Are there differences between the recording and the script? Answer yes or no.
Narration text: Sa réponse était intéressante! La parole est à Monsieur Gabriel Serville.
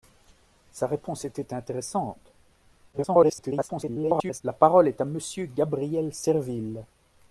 yes